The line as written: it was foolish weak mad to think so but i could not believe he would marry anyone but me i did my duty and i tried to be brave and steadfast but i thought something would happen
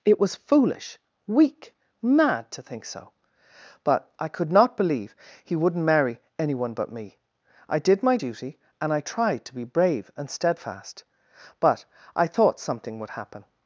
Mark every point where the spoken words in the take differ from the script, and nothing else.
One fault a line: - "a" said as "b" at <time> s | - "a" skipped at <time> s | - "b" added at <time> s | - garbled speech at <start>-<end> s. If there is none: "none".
- "would" said as "wouldn't" at 5.5 s